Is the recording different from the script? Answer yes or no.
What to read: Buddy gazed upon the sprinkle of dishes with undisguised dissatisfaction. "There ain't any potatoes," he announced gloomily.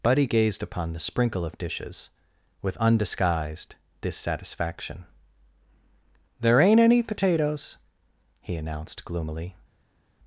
no